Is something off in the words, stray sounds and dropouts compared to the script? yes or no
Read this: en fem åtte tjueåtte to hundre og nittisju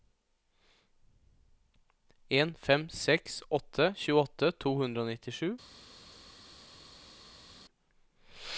yes